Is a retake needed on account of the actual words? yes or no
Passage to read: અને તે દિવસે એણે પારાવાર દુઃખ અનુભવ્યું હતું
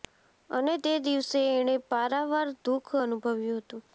no